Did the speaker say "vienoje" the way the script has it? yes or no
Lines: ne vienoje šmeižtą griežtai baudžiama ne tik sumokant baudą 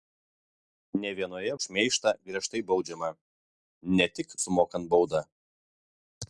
yes